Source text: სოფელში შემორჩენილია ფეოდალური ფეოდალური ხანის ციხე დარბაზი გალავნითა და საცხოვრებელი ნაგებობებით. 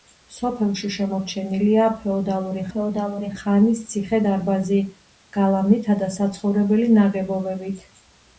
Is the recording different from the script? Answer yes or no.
no